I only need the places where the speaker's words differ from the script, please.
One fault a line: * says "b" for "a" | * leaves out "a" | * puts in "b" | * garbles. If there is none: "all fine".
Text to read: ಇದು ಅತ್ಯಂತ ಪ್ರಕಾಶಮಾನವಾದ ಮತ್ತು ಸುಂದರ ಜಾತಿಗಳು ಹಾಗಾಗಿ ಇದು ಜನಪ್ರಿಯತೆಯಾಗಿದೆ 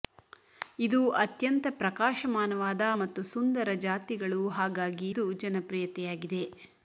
all fine